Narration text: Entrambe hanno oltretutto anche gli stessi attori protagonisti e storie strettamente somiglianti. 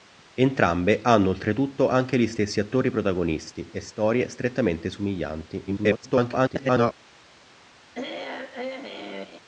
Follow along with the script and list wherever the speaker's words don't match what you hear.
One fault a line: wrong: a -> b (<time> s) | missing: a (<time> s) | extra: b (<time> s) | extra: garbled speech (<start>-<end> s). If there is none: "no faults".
extra: garbled speech (5.7-6.9 s)